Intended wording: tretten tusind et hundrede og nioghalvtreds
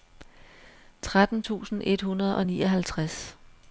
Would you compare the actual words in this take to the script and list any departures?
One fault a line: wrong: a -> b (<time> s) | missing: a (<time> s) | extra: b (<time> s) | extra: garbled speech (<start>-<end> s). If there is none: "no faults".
no faults